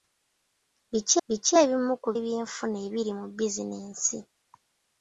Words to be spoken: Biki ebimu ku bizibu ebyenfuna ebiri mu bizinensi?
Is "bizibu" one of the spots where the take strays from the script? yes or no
yes